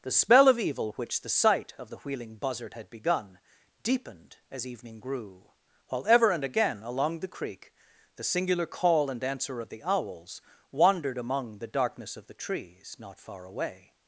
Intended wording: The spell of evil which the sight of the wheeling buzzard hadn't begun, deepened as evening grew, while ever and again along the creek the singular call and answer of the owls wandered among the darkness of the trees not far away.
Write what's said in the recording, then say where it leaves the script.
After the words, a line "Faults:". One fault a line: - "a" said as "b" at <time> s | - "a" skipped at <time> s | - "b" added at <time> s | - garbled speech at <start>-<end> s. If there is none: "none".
The spell of evil which the sight of the wheeling buzzard had begun, deepened as evening grew, while ever and again along the creek the singular call and answer of the owls wandered among the darkness of the trees not far away.
Faults:
- "hadn't" said as "had" at 2.7 s